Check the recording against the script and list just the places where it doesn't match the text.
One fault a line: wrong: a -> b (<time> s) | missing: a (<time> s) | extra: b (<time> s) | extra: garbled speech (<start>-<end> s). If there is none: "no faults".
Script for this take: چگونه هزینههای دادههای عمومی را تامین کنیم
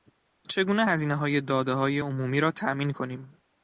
no faults